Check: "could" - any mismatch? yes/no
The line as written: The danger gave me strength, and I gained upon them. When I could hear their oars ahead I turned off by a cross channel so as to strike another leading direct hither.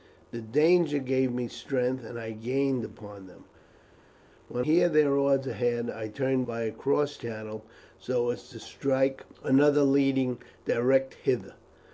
yes